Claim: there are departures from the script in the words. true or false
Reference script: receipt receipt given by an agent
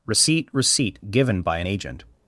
false